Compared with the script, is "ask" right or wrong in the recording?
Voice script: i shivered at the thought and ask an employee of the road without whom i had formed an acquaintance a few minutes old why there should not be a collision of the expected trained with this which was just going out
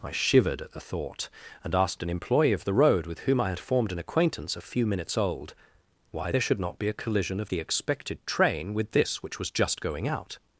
wrong